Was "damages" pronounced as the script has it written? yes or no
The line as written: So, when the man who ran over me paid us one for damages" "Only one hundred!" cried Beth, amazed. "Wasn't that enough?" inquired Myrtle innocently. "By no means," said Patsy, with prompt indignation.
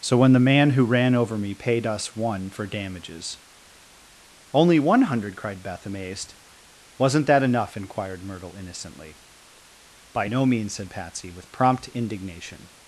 yes